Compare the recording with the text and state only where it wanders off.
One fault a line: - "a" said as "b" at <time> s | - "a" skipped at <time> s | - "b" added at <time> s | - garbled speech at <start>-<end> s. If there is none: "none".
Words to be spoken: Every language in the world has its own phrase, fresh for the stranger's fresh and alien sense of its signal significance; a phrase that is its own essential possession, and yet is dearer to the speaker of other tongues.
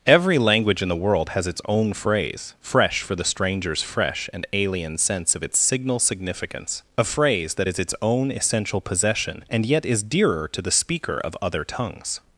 none